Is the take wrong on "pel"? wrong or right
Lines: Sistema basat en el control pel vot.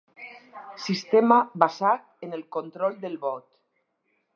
wrong